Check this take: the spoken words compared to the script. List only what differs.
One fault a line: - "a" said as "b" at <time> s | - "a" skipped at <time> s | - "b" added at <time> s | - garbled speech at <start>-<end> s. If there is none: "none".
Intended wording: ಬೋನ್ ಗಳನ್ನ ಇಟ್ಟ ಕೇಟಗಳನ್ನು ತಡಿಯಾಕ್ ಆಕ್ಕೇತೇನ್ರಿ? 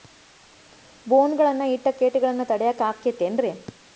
none